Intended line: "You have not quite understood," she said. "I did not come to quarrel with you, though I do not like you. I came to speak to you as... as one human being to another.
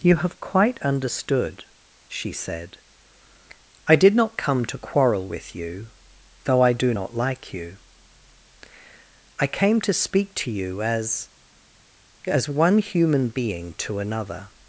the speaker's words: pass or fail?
fail